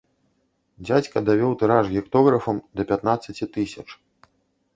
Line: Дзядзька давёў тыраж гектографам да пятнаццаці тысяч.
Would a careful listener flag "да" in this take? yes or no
no